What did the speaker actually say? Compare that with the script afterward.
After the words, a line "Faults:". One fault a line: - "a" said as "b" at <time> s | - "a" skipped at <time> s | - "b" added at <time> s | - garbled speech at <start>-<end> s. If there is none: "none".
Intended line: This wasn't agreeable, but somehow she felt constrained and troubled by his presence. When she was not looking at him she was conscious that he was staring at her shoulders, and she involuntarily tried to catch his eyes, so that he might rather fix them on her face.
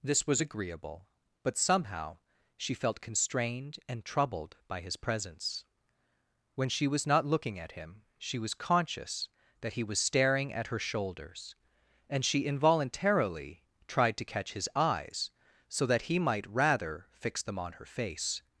This was agreeable, but somehow she felt constrained and troubled by his presence. When she was not looking at him she was conscious that he was staring at her shoulders, and she involuntarily tried to catch his eyes, so that he might rather fix them on her face.
Faults:
- "wasn't" said as "was" at 0.2 s